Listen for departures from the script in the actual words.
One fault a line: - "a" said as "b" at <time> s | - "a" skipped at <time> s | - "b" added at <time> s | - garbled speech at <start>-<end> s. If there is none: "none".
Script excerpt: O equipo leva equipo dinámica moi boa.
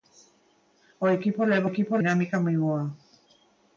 none